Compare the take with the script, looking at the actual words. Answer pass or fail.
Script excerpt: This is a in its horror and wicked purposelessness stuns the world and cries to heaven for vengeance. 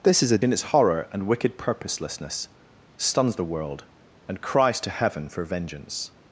pass